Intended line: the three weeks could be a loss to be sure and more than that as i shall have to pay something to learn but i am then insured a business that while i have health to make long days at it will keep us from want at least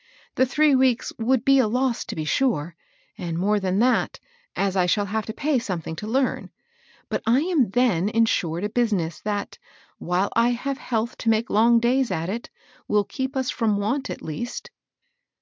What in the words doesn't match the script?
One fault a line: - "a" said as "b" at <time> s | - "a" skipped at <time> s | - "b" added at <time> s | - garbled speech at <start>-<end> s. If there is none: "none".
- "could" said as "would" at 1.2 s